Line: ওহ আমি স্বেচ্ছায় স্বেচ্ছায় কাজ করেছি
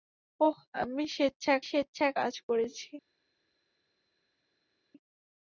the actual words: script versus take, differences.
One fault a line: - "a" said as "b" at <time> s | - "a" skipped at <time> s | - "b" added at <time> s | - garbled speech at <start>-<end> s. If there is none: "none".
none